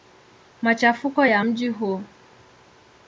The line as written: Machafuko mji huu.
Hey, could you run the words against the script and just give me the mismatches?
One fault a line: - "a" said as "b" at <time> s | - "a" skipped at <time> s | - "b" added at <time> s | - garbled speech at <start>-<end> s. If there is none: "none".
- "ya" added at 1.2 s